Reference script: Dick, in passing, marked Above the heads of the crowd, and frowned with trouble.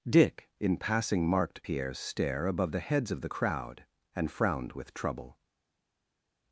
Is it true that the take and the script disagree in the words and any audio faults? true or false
true